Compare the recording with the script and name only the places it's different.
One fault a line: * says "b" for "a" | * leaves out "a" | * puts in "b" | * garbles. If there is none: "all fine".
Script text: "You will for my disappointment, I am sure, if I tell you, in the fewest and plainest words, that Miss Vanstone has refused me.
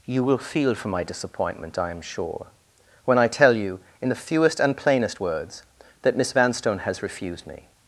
* puts in "feel"
* says "when" for "if"